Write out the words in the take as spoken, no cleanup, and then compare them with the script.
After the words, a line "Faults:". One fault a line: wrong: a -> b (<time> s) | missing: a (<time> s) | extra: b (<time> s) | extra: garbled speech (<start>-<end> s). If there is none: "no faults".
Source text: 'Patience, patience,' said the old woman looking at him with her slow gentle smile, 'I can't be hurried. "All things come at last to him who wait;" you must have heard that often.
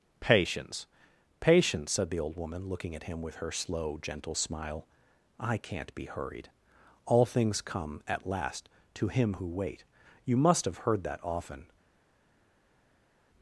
'Patience, patience,' said the old woman looking at him with her slow gentle smile, 'I can't be hurried. "All things come at last to him who wait;" you must have heard that often.
Faults:
no faults